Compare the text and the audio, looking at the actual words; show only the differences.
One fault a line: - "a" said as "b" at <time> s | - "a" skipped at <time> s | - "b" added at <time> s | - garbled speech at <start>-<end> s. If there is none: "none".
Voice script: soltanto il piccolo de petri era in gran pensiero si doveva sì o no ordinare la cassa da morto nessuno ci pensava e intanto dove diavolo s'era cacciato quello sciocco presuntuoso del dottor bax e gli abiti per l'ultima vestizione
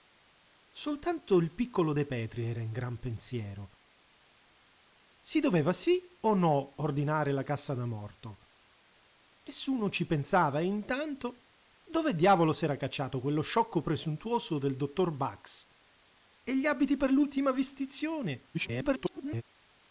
- garbled speech at 18.5-19.4 s